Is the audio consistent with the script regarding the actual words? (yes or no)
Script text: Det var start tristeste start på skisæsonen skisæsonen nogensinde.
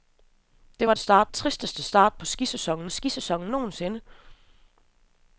yes